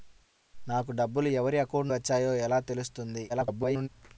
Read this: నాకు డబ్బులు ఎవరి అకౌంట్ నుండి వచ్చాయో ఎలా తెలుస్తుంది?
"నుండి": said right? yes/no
no